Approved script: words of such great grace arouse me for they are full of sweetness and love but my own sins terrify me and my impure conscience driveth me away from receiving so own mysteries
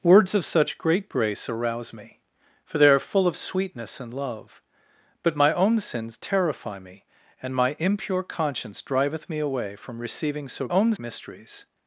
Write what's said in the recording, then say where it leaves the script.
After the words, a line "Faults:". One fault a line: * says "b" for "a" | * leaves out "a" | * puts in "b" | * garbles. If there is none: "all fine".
words of such great grace arouse me for they are full of sweetness and love but my own sins terrify me and my impure conscience driveth me away from receiving so own mysteries
Faults:
all fine